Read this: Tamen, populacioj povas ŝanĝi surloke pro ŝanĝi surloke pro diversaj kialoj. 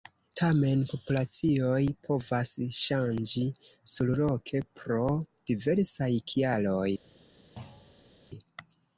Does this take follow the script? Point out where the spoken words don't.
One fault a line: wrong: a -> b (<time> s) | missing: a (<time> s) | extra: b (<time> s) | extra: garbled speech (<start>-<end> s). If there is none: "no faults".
missing: ŝanĝi surloke pro (5.0 s)